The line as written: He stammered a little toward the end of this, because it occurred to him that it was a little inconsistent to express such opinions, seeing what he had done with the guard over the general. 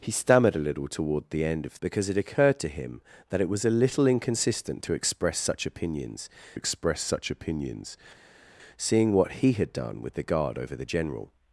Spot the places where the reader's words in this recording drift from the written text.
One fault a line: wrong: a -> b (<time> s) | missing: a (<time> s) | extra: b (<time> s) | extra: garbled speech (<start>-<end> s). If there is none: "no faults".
missing: this (1.8 s)
extra: express such opinions (6.5 s)